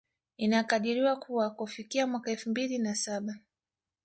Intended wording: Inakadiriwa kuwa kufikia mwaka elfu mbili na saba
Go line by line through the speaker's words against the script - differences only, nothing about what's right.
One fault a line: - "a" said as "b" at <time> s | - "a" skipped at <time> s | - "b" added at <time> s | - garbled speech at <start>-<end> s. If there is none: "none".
none